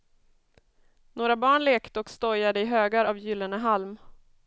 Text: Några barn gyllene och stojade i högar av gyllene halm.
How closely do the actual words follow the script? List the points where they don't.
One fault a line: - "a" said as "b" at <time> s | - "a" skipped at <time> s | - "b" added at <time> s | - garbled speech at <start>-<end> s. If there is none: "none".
- "gyllene" said as "lekte" at 1.6 s